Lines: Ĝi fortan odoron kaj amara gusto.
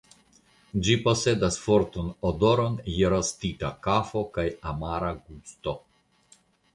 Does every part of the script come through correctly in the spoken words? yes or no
no